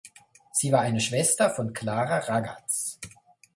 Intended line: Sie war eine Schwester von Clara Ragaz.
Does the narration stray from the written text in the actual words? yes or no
no